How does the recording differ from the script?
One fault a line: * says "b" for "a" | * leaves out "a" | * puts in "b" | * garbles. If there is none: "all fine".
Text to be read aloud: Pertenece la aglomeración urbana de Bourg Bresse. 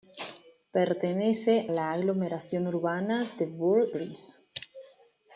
all fine